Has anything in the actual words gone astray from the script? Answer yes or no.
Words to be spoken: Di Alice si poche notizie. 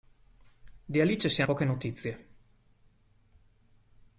no